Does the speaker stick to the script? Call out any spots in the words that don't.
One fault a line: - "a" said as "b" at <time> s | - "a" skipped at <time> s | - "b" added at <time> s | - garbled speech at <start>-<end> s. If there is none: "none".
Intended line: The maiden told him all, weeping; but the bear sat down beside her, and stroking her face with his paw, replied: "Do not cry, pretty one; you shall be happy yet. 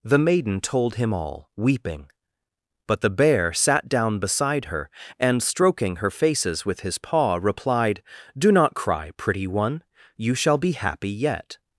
- "face" said as "faces" at 6.1 s